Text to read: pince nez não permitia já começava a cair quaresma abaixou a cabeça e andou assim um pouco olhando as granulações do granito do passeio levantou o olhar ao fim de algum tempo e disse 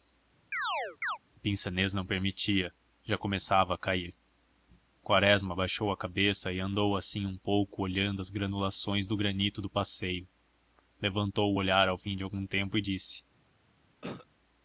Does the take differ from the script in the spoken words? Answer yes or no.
no